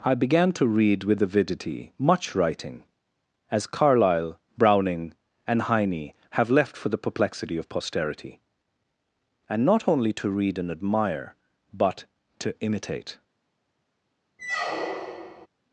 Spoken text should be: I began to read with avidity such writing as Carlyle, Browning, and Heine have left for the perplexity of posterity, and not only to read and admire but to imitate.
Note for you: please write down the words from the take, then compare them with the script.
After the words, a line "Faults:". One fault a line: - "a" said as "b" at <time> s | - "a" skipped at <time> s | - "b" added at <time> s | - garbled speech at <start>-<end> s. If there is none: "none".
I began to read with avidity much writing as Carlyle, Browning, and Heine have left for the perplexity of posterity, and not only to read and admire but to imitate.
Faults:
- "such" said as "much" at 2.0 s